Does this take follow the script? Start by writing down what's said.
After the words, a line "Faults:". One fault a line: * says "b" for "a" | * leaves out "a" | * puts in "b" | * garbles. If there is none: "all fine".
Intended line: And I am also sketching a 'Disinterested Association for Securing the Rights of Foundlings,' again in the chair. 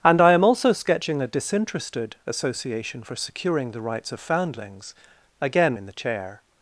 And I am also sketching a 'Disinterested Association for Securing the Rights of Foundlings,' again in the chair.
Faults:
all fine